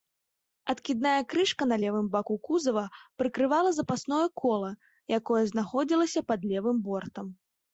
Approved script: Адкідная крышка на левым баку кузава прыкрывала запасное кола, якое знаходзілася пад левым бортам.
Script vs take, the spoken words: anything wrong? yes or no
no